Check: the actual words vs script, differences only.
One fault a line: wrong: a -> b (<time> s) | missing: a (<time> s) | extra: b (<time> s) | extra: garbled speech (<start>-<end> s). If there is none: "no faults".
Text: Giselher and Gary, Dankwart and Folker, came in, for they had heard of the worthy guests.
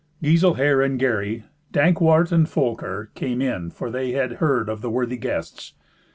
no faults